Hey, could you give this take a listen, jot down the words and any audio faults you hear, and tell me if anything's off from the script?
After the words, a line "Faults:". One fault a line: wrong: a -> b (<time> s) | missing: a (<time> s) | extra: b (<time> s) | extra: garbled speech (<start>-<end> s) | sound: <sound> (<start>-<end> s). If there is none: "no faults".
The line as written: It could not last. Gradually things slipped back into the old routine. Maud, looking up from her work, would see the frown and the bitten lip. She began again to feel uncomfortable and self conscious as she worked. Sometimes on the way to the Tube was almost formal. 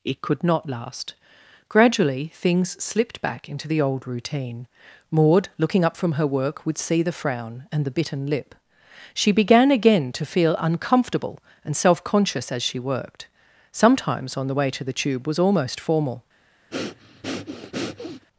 It could not last. Gradually things slipped back into the old routine. Maud, looking up from her work, would see the frown and the bitten lip. She began again to feel uncomfortable and self conscious as she worked. Sometimes on the way to the Tube was almost formal.
Faults:
sound: breath (16.7-18.3 s)